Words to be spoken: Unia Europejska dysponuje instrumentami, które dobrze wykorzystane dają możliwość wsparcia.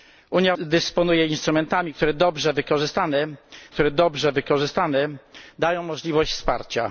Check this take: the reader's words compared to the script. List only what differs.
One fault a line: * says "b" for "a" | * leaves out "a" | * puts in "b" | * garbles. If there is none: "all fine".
* leaves out "Europejska"
* puts in "które dobrze wykorzystane"